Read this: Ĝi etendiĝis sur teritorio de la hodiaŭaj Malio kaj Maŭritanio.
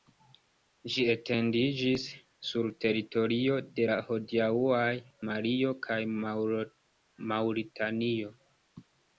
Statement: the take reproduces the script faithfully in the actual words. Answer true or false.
true